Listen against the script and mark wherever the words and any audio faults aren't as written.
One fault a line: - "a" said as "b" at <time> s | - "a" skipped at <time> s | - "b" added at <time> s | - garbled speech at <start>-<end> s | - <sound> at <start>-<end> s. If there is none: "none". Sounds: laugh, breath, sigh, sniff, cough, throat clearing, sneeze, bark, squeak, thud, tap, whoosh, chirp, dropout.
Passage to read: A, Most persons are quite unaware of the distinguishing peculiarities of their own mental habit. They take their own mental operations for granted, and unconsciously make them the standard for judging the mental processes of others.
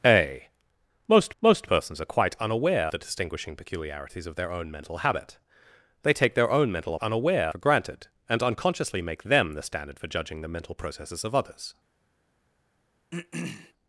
- "Most" added at 1.4 s
- "of" skipped at 2.9 s
- "operations" said as "unaware" at 7.0 s
- throat clearing at 13.1-13.7 s